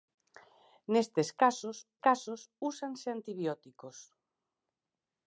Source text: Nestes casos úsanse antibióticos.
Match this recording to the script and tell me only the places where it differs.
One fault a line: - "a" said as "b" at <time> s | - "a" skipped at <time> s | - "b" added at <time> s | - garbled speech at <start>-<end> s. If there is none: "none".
- "casos" added at 2.1 s